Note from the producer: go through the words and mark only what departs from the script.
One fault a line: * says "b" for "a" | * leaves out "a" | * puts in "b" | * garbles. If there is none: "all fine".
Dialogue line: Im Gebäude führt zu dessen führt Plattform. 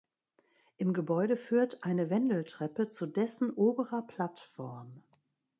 * puts in "eine Wendeltreppe"
* says "oberer" for "führt"